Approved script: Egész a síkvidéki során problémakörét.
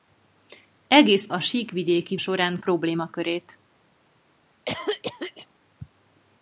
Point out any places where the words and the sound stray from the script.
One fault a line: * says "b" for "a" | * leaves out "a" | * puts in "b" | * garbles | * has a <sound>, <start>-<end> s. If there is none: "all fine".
* has a cough, 4.6-5.5 s